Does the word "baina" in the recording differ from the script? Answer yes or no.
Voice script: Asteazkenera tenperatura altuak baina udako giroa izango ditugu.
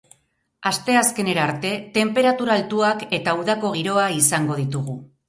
yes